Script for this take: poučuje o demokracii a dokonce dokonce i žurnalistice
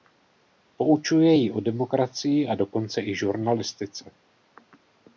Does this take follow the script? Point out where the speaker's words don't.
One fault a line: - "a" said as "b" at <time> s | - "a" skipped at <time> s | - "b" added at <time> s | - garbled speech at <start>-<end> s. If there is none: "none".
- "ji" added at 1.3 s
- "dokonce" skipped at 3.0 s